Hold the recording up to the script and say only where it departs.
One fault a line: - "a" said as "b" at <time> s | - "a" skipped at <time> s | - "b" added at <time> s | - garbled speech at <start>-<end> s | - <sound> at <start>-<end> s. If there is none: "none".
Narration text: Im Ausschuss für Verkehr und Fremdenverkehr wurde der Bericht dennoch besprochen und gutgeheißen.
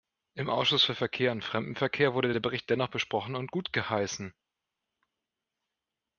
none